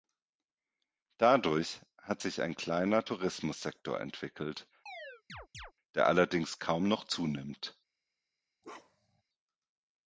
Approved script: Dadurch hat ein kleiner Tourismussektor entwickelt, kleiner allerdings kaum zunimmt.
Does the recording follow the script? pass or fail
fail